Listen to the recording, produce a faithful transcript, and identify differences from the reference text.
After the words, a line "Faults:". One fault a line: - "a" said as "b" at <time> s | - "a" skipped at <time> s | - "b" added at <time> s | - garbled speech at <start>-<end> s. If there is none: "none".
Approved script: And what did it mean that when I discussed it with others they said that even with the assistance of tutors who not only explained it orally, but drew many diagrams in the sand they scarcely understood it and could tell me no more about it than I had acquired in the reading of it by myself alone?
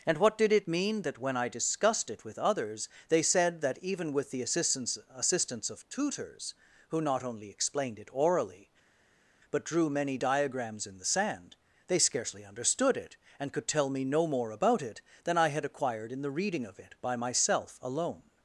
And what did it mean that when I discussed it with others they said that even with the assistance assistance of tutors who not only explained it orally, but drew many diagrams in the sand they scarcely understood it and could tell me no more about it than I had acquired in the reading of it by myself alone?
Faults:
- "assistance" added at 5.1 s